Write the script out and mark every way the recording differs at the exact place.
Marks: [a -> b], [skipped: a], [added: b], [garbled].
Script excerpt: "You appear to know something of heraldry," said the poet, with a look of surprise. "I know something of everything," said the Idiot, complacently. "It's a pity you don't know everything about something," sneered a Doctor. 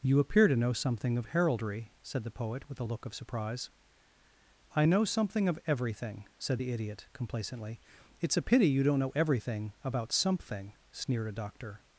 "You appear to know something of heraldry," said the poet, with a look of surprise. "I know something of everything," said the Idiot, complacently. "It's a pity you don't know everything about something," sneered a Doctor.